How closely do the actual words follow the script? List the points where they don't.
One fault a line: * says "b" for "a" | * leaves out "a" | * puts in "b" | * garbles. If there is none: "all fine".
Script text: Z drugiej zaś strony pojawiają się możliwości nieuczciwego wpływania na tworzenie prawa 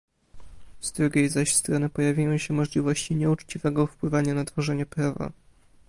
all fine